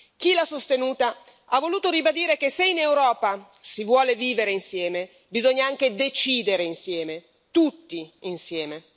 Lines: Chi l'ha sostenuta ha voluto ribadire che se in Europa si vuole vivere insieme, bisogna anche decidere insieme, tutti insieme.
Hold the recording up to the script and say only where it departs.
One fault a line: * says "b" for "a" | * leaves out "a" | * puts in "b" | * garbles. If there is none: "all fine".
all fine